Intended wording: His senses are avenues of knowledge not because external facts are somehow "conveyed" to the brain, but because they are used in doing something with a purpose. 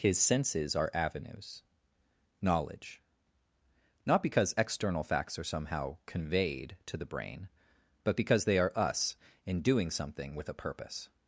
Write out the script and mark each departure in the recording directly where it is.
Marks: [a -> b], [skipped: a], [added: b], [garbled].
His senses are avenues [skipped: of] knowledge not because external facts are somehow "conveyed" to the brain, but because they are [used -> us] in doing something with a purpose.